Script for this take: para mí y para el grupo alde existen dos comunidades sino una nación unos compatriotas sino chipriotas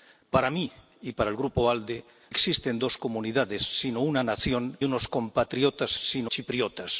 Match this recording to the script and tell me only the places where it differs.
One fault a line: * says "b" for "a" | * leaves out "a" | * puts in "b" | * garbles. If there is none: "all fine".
all fine